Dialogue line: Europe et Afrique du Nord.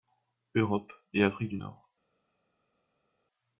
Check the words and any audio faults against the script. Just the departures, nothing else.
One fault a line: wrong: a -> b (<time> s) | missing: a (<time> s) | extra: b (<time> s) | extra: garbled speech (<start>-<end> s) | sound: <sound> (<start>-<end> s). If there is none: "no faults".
no faults